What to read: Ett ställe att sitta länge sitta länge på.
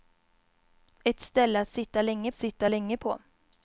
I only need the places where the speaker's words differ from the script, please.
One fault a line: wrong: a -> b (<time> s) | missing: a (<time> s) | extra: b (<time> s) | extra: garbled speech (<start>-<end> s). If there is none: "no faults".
no faults